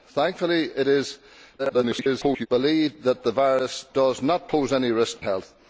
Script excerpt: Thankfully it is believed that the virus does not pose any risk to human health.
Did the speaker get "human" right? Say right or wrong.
wrong